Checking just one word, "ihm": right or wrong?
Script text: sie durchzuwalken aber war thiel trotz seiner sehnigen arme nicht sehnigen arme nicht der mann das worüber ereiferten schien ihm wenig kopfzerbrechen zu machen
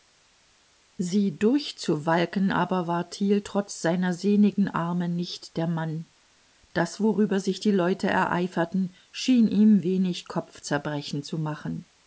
right